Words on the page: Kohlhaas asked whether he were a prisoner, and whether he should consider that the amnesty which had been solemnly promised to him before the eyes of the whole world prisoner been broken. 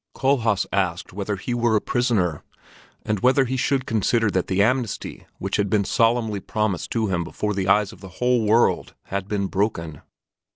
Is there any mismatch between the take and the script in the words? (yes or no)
yes